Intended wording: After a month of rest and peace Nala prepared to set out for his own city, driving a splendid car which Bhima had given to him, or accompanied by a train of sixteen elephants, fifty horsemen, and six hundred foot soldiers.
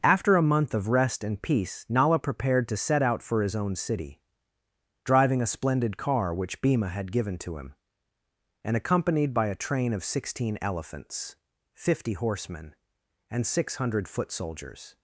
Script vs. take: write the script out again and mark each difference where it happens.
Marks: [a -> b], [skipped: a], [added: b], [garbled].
After a month of rest and peace Nala prepared to set out for his own city, driving a splendid car which Bhima had given to him, [or -> and] accompanied by a train of sixteen elephants, fifty horsemen, and six hundred foot soldiers.